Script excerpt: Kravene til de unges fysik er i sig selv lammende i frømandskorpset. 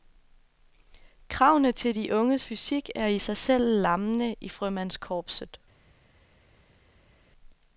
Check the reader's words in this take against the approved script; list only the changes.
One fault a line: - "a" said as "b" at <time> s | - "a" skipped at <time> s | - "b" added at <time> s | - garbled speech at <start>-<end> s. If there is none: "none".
none